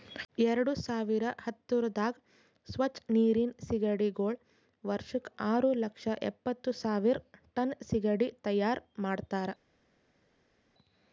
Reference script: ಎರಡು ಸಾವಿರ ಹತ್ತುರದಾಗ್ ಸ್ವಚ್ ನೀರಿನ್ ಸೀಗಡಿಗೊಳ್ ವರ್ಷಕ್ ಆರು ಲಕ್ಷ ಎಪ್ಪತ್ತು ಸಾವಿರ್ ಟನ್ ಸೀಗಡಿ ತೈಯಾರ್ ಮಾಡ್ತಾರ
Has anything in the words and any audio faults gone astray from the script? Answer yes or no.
no